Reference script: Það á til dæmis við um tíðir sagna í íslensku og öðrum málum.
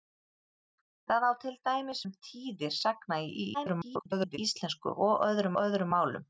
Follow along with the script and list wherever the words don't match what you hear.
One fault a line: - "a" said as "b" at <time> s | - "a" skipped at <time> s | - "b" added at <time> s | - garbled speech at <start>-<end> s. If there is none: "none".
- "við" skipped at 2.0 s
- garbled speech at 3.5-4.4 s
- "öðrum" added at 5.6 s